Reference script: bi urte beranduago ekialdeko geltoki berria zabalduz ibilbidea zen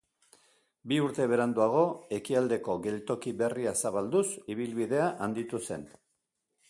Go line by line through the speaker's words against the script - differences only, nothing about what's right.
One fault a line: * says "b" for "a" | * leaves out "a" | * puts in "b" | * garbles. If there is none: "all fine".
* puts in "handitu"